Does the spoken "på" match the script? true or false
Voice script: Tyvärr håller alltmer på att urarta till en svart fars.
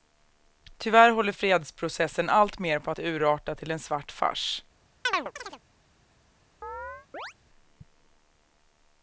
true